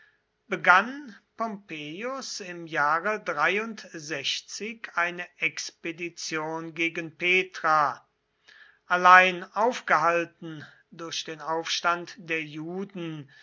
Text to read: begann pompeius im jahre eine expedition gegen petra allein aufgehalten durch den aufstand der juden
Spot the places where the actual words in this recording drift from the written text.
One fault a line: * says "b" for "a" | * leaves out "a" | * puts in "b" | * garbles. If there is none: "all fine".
all fine